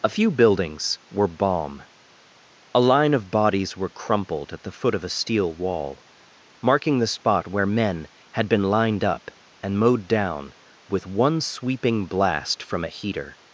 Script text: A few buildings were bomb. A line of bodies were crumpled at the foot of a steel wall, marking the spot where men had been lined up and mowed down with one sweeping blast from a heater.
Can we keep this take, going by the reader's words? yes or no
yes